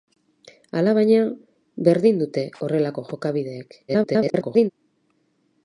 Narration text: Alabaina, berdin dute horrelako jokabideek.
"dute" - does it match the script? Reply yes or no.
yes